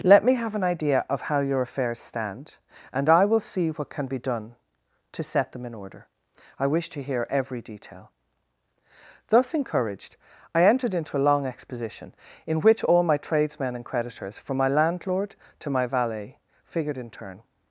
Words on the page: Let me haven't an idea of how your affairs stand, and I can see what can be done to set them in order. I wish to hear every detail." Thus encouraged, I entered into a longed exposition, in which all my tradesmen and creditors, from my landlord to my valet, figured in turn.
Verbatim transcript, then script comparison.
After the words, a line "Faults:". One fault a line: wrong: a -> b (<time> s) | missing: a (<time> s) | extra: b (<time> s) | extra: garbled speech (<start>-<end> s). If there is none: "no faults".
Let me have an idea of how your affairs stand, and I will see what can be done to set them in order. I wish to hear every detail." Thus encouraged, I entered into a long exposition, in which all my tradesmen and creditors, from my landlord to my valet, figured in turn.
Faults:
wrong: haven't -> have (0.3 s)
wrong: can -> will (3.2 s)
wrong: longed -> long (11.3 s)